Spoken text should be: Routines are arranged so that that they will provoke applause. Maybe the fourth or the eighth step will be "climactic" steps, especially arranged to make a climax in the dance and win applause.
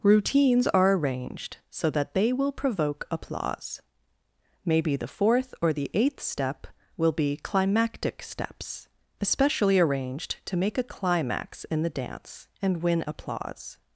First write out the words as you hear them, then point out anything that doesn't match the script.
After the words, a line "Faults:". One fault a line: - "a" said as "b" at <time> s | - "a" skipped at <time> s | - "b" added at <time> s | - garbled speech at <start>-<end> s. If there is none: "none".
Routines are arranged so that they will provoke applause. Maybe the fourth or the eighth step will be "climactic" steps, especially arranged to make a climax in the dance and win applause.
Faults:
- "that" skipped at 2.1 s